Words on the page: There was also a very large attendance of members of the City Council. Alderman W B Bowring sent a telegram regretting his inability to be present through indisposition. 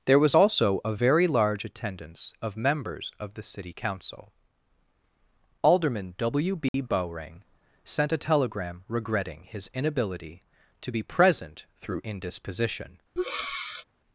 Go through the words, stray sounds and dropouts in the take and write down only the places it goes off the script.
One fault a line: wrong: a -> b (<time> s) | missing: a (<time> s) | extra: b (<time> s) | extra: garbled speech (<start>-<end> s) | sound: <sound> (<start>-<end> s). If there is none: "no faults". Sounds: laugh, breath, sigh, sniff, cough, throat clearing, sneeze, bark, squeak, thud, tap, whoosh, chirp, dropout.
sound: dropout (6.7-6.7 s)
sound: breath (13.2-13.8 s)